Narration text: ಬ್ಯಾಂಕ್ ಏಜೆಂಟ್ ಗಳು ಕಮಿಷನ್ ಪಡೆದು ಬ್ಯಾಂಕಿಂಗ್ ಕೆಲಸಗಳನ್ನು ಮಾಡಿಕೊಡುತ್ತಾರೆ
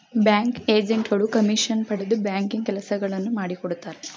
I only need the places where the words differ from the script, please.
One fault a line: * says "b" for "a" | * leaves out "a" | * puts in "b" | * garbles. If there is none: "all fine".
all fine